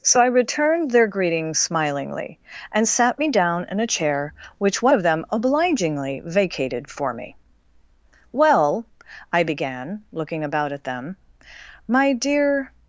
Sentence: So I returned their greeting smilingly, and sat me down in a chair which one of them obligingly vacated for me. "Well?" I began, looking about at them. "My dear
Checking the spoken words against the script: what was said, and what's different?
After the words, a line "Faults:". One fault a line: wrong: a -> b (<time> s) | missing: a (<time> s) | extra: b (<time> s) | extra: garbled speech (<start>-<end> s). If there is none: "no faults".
So I returned their greeting smilingly, and sat me down in a chair which one of them obligingly vacated for me. "Well?" I began, looking about at them. "My dear
Faults:
no faults